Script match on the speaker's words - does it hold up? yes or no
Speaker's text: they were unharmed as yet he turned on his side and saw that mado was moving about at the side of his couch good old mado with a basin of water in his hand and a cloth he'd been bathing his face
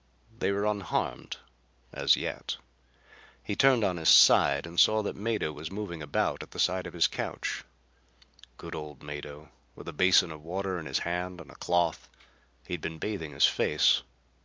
yes